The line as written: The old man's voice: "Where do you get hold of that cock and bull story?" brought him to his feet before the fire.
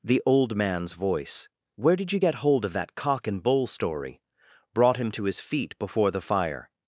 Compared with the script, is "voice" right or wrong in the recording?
right